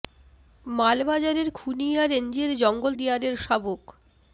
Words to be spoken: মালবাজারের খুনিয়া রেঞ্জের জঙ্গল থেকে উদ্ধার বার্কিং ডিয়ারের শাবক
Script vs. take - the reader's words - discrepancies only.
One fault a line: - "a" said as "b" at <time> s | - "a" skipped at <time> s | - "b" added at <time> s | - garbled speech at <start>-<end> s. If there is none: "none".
- "থেকে উদ্ধার বার্কিং" skipped at 2.9 s